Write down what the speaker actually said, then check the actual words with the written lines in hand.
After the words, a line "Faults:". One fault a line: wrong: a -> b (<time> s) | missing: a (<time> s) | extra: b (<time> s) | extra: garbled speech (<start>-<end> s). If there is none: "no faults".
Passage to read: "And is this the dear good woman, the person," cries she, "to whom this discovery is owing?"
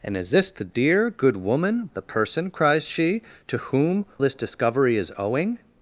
"And is this the dear good woman, the person," cries she, "to whom this discovery is owing?"
Faults:
no faults